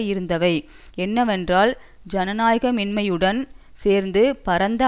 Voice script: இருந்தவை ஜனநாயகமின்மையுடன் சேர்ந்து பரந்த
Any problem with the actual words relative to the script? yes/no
yes